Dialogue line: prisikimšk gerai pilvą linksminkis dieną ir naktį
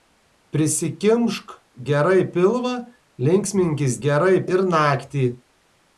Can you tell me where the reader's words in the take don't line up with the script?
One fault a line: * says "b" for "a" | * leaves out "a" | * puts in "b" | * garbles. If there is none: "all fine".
* says "gerai" for "dieną"